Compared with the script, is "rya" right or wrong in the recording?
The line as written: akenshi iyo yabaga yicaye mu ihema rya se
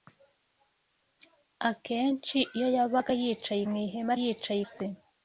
wrong